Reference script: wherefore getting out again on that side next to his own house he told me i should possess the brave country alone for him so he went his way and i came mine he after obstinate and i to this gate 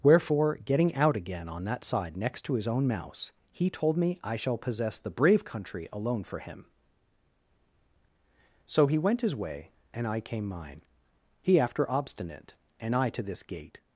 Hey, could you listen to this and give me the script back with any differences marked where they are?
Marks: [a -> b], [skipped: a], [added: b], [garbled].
wherefore getting out again on that side next to his own [house -> mouse] he told me i [should -> shall] possess the brave country alone for him so he went his way and i came mine he after obstinate and i to this gate